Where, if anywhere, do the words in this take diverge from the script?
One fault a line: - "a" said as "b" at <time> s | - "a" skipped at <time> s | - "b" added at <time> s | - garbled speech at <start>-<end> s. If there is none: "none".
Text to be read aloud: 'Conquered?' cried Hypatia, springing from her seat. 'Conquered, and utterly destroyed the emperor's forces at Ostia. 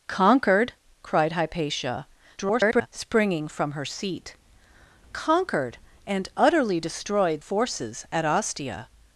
- garbled speech at 2.4-2.9 s
- "the emperor's" skipped at 7.4 s